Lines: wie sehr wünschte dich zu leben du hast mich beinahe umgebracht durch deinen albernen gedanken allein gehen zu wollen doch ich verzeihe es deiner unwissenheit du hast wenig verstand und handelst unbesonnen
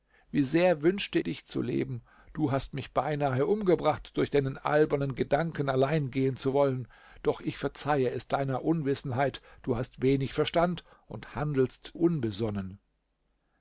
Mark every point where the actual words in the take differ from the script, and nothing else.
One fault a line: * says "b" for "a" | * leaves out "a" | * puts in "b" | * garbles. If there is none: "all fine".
all fine